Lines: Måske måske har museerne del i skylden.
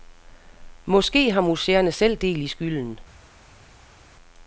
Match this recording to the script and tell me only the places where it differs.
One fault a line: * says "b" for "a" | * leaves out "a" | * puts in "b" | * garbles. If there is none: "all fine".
* leaves out "måske"
* puts in "selv"